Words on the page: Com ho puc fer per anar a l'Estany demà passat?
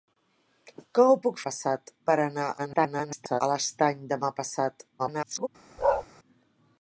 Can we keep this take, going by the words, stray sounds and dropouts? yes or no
no